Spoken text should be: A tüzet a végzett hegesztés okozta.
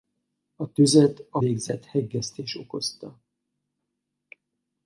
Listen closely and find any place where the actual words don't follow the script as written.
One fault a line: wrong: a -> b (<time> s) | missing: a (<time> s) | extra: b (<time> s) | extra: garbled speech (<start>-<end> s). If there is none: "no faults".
no faults